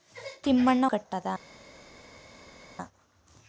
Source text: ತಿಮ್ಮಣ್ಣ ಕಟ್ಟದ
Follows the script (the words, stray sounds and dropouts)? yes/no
yes